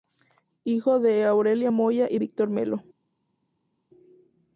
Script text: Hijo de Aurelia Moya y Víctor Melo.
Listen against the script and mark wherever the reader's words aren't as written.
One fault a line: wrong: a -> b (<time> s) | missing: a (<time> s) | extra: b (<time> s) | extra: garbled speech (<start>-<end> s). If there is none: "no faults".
no faults